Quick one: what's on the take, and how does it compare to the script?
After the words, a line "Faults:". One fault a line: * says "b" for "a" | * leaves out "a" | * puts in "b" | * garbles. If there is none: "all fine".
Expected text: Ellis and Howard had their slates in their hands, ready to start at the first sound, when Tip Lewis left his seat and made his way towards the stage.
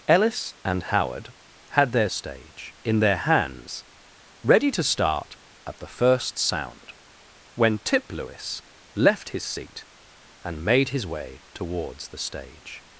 Ellis and Howard had their stage in their hands, ready to start at the first sound, when Tip Lewis left his seat and made his way towards the stage.
Faults:
* says "stage" for "slates"